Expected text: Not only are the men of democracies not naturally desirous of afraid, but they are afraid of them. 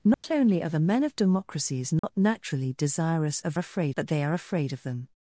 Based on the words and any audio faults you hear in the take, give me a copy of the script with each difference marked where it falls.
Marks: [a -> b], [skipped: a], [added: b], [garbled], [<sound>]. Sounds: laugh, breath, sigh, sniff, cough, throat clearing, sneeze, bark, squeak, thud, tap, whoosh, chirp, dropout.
Not [dropout] only are the men of democracies not [dropout] naturally desirous of afraid, but they are afraid of them.